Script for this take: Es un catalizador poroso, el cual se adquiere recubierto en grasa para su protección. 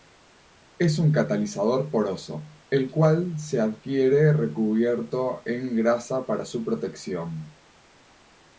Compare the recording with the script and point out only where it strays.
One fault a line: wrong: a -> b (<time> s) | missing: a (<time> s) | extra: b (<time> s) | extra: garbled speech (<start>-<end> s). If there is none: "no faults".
no faults